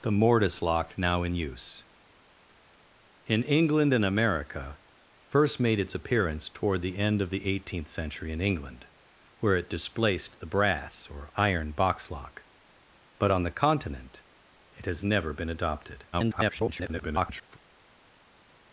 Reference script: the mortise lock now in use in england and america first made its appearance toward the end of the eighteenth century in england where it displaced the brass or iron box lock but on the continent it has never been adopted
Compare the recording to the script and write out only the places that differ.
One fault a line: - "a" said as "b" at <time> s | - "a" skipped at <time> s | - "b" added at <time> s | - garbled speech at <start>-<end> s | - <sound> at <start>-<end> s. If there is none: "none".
- garbled speech at 16.1-17.6 s